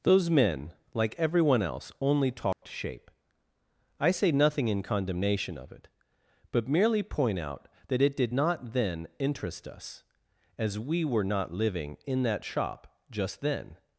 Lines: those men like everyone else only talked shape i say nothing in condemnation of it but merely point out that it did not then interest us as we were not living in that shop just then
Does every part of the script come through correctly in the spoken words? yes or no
yes